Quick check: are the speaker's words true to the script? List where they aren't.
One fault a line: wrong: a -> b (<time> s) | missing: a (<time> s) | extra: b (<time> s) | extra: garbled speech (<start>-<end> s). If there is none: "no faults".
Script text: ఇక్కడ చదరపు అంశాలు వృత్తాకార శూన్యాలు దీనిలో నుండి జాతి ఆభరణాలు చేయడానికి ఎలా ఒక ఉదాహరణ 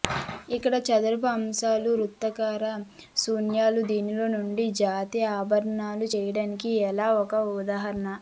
no faults